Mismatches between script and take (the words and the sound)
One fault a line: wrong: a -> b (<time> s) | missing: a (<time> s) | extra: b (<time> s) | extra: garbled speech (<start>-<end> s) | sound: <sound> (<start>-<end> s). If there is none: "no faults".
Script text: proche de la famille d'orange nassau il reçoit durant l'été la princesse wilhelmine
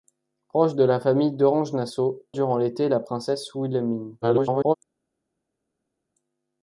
missing: il reçoit (2.2 s)
extra: garbled speech (4.2-4.7 s)